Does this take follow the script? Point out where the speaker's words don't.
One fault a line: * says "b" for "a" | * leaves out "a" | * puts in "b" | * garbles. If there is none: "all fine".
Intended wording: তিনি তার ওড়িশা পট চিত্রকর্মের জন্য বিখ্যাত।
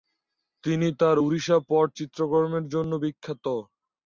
all fine